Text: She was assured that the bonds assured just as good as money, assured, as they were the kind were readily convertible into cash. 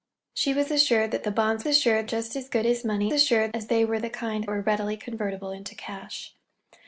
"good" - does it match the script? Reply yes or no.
yes